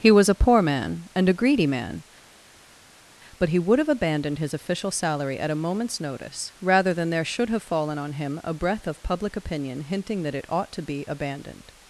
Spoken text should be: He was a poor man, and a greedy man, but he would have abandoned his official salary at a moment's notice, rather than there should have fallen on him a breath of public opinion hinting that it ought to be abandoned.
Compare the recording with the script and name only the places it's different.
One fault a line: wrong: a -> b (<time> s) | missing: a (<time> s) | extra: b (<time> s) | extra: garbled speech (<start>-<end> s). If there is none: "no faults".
no faults